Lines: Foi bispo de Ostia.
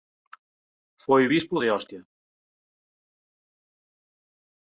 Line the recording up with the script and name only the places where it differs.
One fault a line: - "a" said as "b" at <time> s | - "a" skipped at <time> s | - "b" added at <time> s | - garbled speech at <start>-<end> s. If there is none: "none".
none